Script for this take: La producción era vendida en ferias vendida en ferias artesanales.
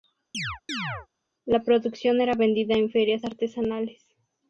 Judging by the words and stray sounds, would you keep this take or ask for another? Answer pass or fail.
fail